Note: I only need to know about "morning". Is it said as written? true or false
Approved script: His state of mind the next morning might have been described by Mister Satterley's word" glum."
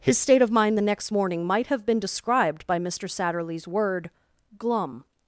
true